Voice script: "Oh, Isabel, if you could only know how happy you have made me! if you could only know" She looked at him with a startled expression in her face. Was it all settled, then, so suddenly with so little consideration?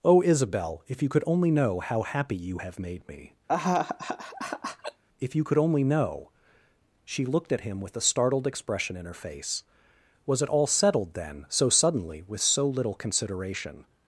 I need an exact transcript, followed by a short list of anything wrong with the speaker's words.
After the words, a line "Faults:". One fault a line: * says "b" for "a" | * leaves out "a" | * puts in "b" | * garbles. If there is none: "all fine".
"Oh, Isabel, if you could only know how happy you have made me! if you could only know" She looked at him with a startled expression in her face. Was it all settled, then, so suddenly with so little consideration?
Faults:
all fine